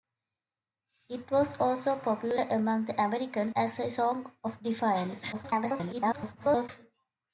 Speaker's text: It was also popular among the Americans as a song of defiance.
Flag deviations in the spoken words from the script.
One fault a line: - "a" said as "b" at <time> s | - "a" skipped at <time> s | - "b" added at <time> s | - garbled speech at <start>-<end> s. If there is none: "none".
- garbled speech at 5.3-6.7 s